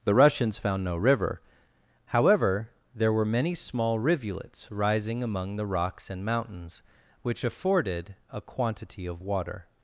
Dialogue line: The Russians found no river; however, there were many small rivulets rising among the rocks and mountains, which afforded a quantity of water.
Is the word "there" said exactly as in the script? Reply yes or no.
yes